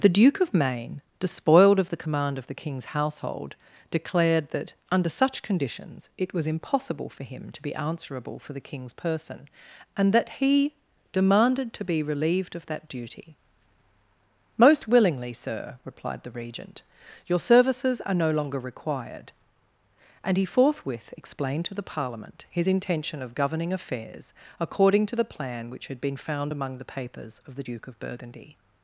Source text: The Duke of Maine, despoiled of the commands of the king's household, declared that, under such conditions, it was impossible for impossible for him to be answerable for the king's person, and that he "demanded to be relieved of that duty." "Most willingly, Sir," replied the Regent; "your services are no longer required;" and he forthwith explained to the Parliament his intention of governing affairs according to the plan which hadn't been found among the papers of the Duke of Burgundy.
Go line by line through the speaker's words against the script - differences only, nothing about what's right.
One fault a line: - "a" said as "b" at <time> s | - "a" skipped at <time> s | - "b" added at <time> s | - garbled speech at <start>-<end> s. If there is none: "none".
- "commands" said as "command" at 2.0 s
- "impossible for" skipped at 7.2 s
- "hadn't" said as "had" at 25.9 s